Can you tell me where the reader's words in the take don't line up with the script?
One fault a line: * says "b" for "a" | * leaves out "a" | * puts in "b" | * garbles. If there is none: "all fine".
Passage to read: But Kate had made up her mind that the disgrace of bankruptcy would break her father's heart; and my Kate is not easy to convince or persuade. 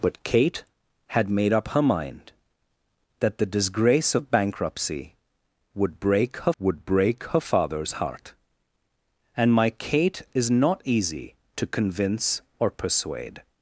* puts in "would break her"